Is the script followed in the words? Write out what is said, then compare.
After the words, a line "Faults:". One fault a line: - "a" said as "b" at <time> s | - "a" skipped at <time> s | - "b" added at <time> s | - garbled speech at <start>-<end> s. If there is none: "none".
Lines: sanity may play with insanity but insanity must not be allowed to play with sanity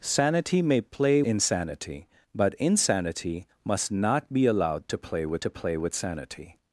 sanity may play insanity but insanity must not be allowed to play with to play with sanity
Faults:
- "with" skipped at 1.2 s
- "to play with" added at 5.4 s